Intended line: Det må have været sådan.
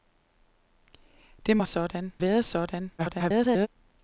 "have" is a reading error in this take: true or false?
true